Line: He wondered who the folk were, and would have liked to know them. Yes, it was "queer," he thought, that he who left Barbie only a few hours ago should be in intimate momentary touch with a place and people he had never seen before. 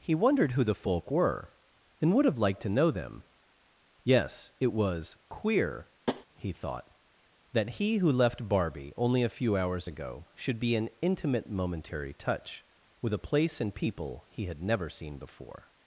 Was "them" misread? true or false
false